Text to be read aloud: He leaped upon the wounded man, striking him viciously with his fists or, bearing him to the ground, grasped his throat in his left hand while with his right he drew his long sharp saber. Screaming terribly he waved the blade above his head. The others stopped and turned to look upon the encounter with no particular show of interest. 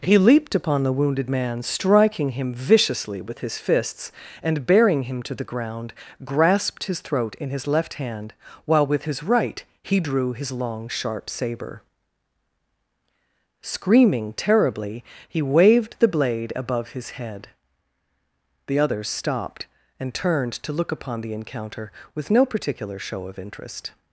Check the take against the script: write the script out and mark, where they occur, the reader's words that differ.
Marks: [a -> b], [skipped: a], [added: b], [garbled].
He leaped upon the wounded man, striking him viciously with his fists [or, -> and] bearing him to the ground, grasped his throat in his left hand while with his right he drew his long sharp saber. Screaming terribly he waved the blade above his head. The others stopped and turned to look upon the encounter with no particular show of interest.